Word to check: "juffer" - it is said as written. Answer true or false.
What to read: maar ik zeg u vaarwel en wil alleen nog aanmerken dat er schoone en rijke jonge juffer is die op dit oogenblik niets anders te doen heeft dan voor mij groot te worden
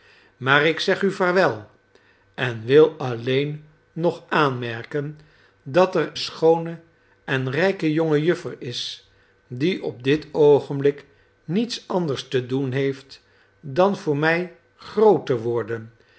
true